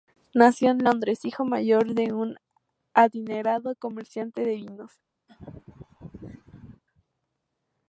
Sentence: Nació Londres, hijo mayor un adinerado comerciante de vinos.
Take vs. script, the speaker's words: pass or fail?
fail